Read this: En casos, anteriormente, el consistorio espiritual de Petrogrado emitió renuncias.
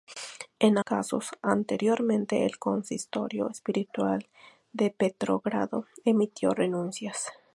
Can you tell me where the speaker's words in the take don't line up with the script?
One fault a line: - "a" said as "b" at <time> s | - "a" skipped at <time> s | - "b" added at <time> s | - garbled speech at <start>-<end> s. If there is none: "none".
none